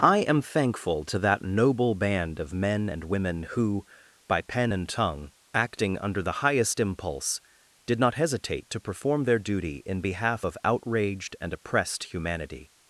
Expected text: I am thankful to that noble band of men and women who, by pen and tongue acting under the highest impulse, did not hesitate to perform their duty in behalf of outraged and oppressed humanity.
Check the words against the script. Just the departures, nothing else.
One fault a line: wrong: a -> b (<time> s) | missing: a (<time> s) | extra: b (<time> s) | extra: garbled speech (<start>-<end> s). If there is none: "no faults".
no faults